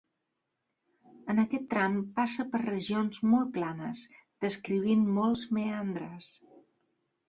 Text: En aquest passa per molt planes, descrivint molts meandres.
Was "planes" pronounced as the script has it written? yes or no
yes